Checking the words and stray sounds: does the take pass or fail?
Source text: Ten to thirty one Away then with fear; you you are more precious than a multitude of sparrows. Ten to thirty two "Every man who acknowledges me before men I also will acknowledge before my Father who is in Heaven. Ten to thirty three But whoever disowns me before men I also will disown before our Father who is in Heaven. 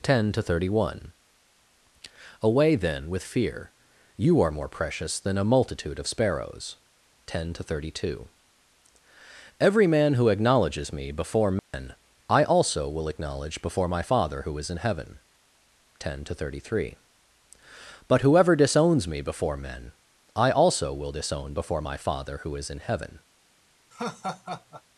fail